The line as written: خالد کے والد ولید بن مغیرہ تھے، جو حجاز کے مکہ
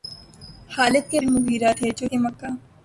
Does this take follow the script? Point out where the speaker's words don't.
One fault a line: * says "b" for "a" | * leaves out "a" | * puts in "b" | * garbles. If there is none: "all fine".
* leaves out "والد ولید"
* leaves out "حجاز"